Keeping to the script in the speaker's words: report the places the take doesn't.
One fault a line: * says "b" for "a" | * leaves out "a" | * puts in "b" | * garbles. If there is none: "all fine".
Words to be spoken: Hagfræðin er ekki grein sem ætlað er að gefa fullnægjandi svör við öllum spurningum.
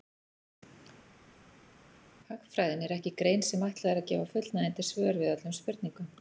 all fine